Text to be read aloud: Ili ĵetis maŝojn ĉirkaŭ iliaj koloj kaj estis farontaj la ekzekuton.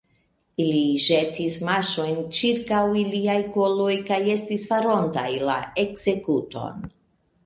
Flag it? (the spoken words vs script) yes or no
no